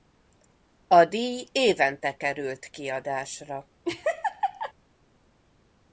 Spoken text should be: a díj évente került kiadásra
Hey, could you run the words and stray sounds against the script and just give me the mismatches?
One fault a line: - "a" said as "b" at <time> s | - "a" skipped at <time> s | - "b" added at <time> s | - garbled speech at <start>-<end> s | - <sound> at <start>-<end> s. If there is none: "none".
- laugh at 3.8-4.7 s